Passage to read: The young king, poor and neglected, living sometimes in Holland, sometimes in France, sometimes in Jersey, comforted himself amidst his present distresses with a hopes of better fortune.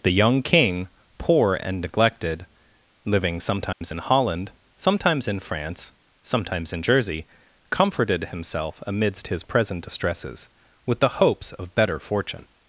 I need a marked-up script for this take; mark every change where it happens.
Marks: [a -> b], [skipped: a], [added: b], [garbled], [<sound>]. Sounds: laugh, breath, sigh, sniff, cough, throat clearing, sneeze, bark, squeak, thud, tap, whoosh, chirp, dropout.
The young king, poor and neglected, living sometimes [dropout] in Holland, sometimes in France, sometimes in Jersey, comforted himself amidst his present distresses with [a -> the] hopes of better fortune.